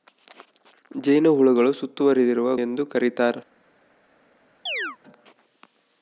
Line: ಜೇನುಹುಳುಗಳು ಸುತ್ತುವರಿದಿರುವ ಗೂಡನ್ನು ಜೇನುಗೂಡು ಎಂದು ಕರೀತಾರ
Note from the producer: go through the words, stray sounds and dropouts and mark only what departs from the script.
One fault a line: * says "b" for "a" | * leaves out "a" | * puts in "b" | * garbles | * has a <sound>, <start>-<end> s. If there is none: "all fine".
* leaves out "ಗೂಡನ್ನು ಜೇನುಗೂಡು"
* has a chirp, 4.7-5.0 s